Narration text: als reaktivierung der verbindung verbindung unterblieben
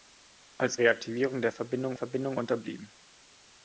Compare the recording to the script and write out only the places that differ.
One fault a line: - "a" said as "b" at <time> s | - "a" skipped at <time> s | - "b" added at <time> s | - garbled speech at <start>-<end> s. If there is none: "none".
none